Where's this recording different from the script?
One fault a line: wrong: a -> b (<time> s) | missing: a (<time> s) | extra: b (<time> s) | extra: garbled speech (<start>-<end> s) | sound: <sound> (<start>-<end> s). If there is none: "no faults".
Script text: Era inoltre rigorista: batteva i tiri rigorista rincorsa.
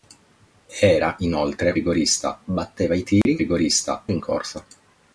sound: dropout (3.2-3.3 s)